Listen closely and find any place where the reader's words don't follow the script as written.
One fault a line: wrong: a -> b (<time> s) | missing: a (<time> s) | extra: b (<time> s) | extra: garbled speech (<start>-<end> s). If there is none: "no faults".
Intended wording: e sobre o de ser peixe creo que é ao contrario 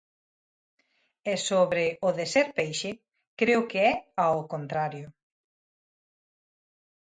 no faults